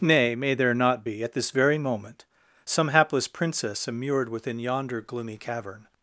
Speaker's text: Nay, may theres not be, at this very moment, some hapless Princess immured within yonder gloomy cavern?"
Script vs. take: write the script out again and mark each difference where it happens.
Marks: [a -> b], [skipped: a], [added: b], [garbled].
Nay, may [theres -> there] not be, at this very moment, some hapless Princess immured within yonder gloomy cavern?"